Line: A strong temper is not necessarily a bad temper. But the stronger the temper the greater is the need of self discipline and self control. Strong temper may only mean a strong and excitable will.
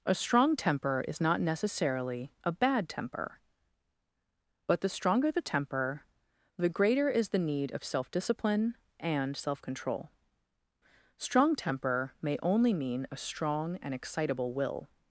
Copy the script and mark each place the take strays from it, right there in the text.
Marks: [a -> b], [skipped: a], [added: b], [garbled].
A strong temper is not necessarily a bad temper. But the stronger the temper the greater is the need of self discipline and self control. Strong temper may only mean a strong and excitable will.